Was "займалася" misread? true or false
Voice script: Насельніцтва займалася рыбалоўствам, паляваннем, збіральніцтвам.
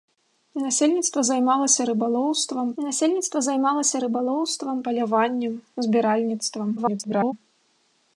false